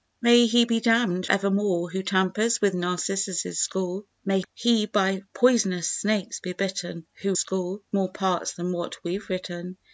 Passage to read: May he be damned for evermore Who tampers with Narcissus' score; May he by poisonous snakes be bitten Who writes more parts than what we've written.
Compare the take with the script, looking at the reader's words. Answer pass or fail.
fail